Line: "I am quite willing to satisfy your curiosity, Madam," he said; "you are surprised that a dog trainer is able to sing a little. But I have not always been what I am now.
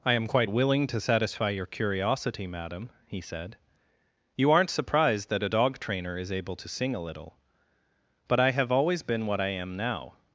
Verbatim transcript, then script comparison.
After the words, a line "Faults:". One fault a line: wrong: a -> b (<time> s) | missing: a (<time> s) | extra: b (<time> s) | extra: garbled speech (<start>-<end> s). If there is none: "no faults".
"I am quite willing to satisfy your curiosity, Madam," he said; "you aren't surprised that a dog trainer is able to sing a little. But I have always been what I am now.
Faults:
wrong: are -> aren't (4.5 s)
missing: not (8.7 s)